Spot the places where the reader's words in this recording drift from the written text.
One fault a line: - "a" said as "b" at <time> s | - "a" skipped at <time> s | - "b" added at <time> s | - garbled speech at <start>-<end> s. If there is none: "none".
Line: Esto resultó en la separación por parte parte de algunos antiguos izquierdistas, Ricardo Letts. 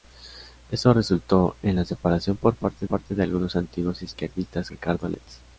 none